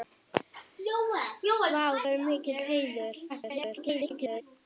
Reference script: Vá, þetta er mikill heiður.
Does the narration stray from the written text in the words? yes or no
yes